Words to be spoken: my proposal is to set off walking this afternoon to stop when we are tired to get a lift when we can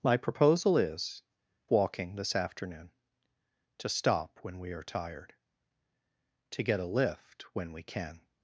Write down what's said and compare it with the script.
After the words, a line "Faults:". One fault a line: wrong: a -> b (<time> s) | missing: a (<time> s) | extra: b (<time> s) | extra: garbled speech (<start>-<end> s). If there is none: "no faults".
my proposal is walking this afternoon to stop when we are tired to get a lift when we can
Faults:
missing: to set off (1.2 s)